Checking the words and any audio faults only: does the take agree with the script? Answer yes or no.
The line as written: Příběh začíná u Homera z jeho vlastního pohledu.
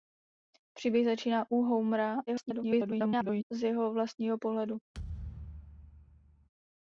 no